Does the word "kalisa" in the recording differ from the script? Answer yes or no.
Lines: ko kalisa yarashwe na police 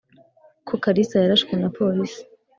no